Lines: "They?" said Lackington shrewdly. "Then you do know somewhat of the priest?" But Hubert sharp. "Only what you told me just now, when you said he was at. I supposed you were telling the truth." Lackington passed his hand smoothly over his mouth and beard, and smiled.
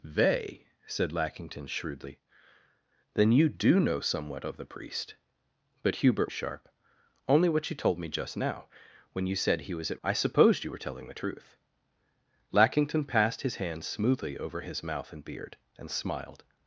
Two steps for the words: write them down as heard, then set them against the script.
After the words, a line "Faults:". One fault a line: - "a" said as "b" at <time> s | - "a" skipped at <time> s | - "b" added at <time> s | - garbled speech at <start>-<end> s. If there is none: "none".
"They?" said Lackington shrewdly. "Then you do know somewhat of the priest?" But Hubert sharp. "Only what you told me just now, when you said he was at. I supposed you were telling the truth." Lackington passed his hand smoothly over his mouth and beard, and smiled.
Faults:
none